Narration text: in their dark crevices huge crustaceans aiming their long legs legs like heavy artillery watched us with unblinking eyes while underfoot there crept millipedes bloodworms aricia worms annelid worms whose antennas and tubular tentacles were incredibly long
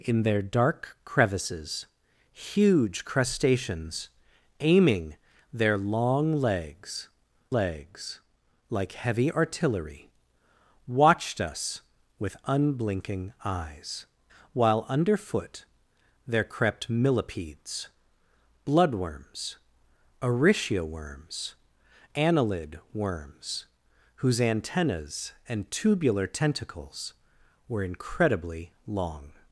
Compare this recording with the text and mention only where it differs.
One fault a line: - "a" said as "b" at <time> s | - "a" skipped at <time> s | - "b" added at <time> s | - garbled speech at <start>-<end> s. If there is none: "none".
none